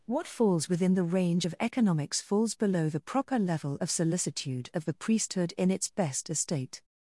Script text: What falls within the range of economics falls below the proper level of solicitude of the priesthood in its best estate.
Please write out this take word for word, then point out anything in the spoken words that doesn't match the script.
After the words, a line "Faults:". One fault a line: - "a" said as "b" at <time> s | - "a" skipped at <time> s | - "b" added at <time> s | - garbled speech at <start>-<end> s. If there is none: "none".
What falls within the range of economics falls below the proper level of solicitude of the priesthood in its best estate.
Faults:
none